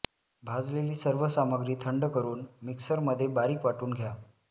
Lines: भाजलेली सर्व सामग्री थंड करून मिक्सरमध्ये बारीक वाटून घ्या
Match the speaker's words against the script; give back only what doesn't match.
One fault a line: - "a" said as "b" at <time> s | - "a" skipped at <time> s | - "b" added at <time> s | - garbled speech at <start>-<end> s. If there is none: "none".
none